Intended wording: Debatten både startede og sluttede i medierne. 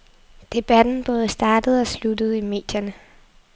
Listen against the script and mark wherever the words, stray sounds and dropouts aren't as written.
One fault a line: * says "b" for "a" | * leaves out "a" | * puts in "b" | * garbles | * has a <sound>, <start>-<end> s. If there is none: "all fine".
all fine